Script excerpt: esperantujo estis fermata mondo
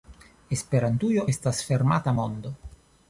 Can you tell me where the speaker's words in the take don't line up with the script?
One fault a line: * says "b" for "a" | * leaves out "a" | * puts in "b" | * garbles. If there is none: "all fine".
* says "estas" for "estis"